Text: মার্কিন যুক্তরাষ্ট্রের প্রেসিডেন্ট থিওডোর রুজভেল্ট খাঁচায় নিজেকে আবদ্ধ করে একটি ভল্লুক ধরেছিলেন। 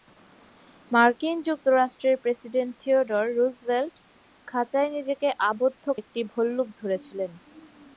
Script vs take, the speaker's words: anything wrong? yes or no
yes